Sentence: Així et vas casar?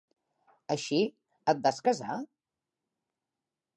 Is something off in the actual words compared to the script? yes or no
no